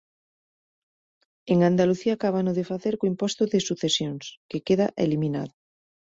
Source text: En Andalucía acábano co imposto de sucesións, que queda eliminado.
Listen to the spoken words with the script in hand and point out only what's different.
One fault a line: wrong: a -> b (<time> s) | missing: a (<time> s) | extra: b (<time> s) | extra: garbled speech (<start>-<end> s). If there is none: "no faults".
extra: de facer (2.6 s)